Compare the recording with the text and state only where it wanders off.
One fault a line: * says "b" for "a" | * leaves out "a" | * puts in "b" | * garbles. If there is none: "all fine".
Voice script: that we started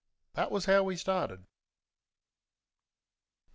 * puts in "was how"